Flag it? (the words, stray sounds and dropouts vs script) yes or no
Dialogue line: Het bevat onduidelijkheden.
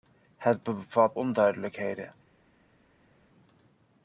no